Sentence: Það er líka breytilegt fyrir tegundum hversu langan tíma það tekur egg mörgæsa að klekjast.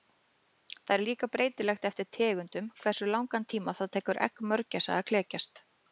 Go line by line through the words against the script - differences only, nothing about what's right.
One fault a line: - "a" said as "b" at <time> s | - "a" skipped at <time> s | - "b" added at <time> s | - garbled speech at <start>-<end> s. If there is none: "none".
- "fyrir" said as "eftir" at 1.9 s